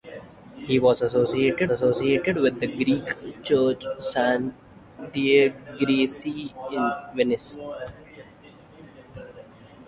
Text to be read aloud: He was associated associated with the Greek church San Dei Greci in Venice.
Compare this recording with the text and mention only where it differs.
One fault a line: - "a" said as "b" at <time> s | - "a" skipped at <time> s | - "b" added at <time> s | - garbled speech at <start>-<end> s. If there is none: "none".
none